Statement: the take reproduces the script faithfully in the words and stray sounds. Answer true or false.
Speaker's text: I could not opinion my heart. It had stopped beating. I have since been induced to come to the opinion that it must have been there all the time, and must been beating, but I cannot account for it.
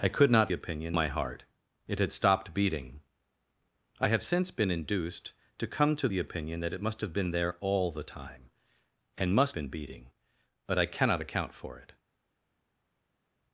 true